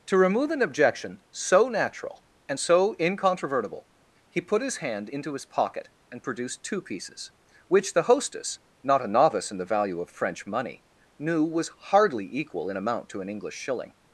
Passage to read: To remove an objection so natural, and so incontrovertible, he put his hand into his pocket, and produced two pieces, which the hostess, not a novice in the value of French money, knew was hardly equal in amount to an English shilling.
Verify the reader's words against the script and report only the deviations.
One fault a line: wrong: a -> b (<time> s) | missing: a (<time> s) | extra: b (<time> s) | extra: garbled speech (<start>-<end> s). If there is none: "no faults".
no faults